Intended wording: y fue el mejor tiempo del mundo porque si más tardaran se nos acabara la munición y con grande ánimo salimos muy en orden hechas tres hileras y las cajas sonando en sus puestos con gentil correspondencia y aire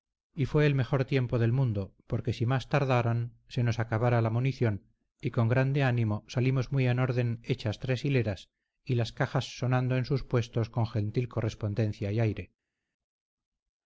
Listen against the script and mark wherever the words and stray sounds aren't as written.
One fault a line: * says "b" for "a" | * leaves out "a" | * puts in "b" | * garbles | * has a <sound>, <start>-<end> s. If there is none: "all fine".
all fine